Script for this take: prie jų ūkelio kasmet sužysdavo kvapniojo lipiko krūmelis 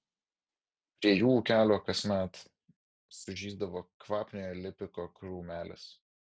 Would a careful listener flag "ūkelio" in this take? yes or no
no